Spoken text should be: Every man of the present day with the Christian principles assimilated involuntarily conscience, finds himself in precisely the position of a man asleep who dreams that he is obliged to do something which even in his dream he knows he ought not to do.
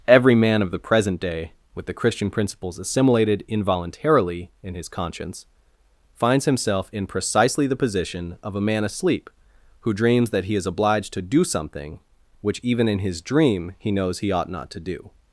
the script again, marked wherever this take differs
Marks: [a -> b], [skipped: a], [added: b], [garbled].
Every man of the present day with the Christian principles assimilated involuntarily [added: in his] conscience, finds himself in precisely the position of a man asleep who dreams that he is obliged to do something which even in his dream he knows he ought not to do.